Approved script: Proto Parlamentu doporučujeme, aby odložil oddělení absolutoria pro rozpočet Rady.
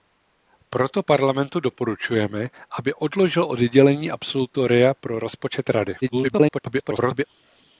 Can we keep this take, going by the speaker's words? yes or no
no